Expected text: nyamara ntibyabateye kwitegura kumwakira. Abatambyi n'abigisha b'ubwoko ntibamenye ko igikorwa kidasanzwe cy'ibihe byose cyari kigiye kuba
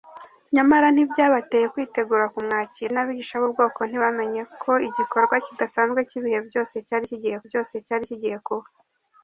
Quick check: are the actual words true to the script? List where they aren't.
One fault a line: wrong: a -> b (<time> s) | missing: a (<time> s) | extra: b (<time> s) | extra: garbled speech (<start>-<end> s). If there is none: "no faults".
missing: Abatambyi (2.9 s)
extra: byose cyari kigiye (7.5 s)